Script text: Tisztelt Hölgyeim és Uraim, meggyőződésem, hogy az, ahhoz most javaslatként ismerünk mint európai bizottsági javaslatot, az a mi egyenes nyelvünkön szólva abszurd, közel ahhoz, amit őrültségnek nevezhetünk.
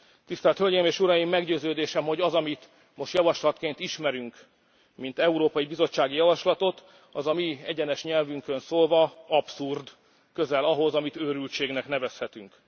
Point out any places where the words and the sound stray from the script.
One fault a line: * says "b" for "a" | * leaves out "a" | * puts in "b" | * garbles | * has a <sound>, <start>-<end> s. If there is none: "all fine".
* says "amit" for "ahhoz"